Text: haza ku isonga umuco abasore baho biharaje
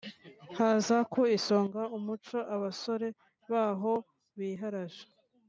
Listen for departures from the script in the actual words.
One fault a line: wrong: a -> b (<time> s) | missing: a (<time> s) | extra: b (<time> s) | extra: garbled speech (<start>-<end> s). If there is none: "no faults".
no faults